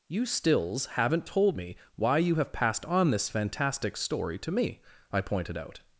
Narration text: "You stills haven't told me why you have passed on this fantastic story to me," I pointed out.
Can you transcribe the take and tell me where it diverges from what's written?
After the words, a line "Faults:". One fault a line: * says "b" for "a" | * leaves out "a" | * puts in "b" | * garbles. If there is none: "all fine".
"You stills haven't told me why you have passed on this fantastic story to me," I pointed out.
Faults:
all fine